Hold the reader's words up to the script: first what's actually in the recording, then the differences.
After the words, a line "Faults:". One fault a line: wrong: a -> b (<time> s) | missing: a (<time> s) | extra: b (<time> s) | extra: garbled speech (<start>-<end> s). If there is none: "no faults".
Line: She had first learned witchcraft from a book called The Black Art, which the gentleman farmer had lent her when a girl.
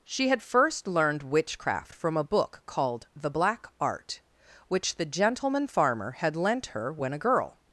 She had first learned witchcraft from a book called The Black Art, which the gentleman farmer had lent her when a girl.
Faults:
no faults